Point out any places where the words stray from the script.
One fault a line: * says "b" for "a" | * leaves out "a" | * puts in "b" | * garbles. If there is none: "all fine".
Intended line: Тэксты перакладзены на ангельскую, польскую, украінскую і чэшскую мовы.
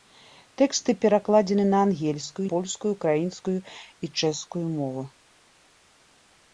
all fine